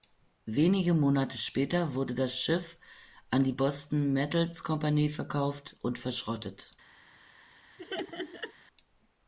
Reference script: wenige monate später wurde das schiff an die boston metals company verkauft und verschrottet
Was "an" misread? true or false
false